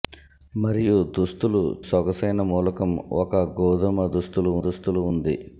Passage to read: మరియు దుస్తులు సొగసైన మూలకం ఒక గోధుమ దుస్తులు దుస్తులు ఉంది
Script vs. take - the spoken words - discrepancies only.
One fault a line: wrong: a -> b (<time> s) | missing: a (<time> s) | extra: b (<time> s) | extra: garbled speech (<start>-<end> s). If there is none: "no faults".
no faults